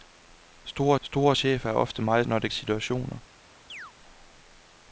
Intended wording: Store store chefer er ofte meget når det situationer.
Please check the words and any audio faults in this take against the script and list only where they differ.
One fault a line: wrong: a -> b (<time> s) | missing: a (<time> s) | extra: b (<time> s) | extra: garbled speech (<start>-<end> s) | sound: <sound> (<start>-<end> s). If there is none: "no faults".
sound: chirp (3.7-3.9 s)